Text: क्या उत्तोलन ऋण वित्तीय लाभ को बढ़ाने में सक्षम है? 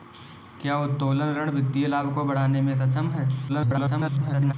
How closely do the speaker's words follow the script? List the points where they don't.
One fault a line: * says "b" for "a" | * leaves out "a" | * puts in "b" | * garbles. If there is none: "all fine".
* garbles